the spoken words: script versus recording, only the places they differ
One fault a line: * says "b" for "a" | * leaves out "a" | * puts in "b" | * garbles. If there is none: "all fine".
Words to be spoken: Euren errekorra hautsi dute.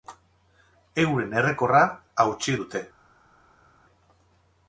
all fine